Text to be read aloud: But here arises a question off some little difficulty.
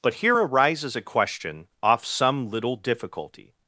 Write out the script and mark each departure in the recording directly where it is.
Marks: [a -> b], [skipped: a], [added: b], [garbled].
But here arises a question off some little difficulty.